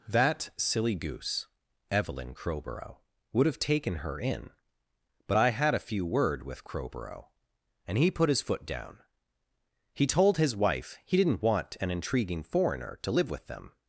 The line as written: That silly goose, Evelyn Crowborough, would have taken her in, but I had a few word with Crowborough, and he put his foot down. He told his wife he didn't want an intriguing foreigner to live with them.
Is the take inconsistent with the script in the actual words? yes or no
no